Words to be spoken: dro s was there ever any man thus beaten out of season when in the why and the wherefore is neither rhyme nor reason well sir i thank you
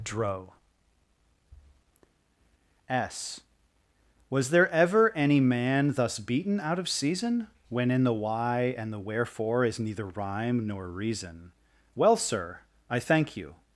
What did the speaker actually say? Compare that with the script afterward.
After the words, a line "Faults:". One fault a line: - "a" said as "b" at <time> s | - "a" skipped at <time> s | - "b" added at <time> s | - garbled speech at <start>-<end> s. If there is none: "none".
dro s was there ever any man thus beaten out of season when in the why and the wherefore is neither rhyme nor reason well sir i thank you
Faults:
none